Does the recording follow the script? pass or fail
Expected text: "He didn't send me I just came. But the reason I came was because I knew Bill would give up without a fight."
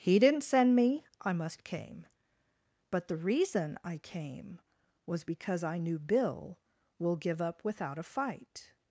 fail